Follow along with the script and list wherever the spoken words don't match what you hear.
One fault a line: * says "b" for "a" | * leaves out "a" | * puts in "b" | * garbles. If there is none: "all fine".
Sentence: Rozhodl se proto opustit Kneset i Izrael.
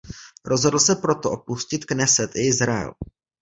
all fine